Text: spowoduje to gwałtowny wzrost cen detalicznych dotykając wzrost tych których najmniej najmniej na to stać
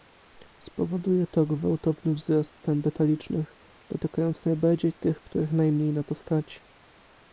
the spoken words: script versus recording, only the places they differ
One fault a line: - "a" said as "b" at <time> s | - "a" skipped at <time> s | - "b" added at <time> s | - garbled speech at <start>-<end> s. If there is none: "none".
- "wzrost" said as "najbardziej" at 4.5 s
- "najmniej" skipped at 5.9 s